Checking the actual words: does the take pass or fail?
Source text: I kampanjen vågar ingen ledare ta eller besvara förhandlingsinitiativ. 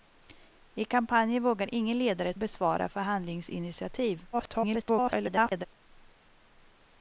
fail